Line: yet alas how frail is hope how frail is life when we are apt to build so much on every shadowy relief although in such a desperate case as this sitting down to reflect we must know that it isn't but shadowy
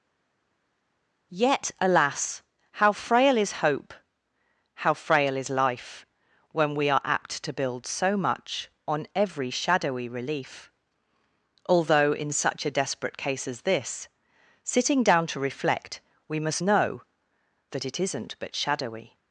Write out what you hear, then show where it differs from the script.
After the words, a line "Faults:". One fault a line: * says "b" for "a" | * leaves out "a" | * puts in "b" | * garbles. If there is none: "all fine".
yet alas how frail is hope how frail is life when we are apt to build so much on every shadowy relief although in such a desperate case as this sitting down to reflect we must know that it isn't but shadowy
Faults:
all fine